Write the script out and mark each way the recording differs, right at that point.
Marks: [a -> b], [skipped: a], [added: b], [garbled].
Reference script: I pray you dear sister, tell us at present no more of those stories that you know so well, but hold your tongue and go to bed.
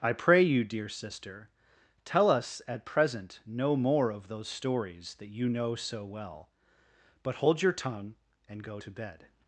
I pray you dear sister, tell us at present no more of those stories that you know so well, but hold your tongue and go to bed.